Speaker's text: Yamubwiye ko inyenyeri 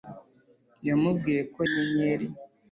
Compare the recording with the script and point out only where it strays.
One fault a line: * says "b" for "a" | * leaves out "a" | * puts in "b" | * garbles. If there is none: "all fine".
all fine